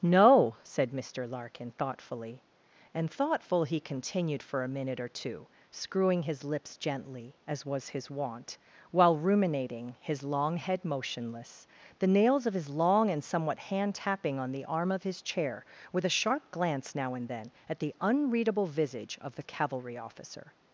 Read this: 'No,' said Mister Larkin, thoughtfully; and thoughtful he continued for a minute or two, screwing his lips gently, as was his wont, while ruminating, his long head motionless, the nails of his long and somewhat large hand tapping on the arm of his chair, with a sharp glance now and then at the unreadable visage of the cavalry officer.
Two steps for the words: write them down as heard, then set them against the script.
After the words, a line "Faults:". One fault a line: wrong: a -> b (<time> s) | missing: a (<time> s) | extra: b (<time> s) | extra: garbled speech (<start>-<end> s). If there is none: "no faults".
'No,' said Mister Larkin, thoughtfully; and thoughtful he continued for a minute or two, screwing his lips gently, as was his wont, while ruminating, his long head motionless, the nails of his long and somewhat hand tapping on the arm of his chair, with a sharp glance now and then at the unreadable visage of the cavalry officer.
Faults:
missing: large (13.6 s)